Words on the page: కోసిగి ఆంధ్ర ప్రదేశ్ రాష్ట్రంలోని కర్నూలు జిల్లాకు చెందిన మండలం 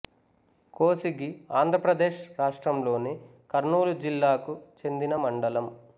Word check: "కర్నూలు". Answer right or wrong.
right